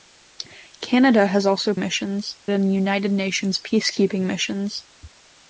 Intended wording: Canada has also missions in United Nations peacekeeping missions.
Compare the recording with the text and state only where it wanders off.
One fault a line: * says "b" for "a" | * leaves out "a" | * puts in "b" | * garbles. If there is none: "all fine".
all fine